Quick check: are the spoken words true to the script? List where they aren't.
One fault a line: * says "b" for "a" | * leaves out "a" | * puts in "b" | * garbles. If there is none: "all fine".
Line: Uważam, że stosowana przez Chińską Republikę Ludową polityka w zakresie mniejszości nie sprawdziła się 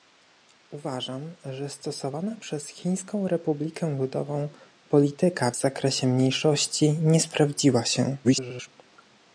* garbles